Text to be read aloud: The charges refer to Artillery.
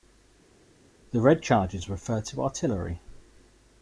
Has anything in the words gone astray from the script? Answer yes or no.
yes